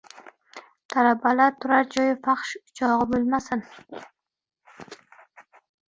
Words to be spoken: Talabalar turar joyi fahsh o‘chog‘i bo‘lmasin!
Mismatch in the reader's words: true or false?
false